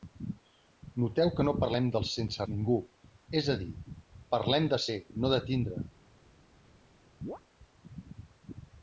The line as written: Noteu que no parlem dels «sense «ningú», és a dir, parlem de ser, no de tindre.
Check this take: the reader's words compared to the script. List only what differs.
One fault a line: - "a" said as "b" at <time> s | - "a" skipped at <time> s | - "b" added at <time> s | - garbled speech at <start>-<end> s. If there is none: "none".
none